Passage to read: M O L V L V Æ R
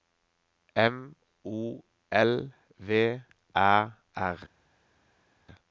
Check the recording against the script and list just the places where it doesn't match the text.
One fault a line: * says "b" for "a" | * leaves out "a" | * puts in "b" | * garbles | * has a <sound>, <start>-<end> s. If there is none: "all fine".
* leaves out "L V"